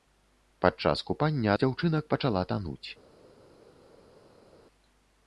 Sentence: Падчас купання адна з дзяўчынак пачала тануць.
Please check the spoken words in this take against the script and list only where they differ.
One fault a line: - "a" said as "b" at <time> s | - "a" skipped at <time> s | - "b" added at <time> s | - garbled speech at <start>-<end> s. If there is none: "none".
- "адна" skipped at 1.5 s